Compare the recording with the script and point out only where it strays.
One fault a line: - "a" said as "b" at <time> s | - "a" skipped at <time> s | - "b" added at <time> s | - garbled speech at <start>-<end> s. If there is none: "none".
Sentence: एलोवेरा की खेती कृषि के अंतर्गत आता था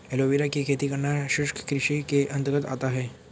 - "करना शुष्क" added at 0.9 s
- "था" said as "है" at 2.9 s